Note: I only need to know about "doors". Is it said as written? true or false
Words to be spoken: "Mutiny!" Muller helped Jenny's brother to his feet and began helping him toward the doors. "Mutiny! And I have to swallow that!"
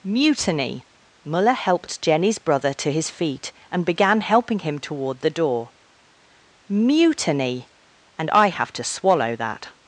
false